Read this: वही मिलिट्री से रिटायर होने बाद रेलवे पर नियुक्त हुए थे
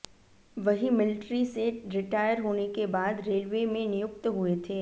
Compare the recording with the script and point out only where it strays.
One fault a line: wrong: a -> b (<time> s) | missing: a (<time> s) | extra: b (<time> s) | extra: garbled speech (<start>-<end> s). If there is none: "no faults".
extra: के (2.7 s)
wrong: पर -> में (3.7 s)